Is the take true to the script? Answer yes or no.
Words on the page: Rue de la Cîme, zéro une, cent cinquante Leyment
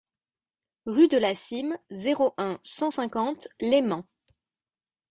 no